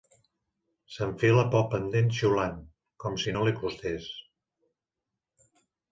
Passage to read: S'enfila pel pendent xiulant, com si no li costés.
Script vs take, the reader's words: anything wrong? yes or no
no